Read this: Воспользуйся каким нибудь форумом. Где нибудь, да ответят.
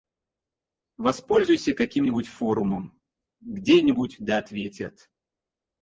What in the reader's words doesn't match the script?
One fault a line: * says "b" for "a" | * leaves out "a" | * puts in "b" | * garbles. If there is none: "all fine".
all fine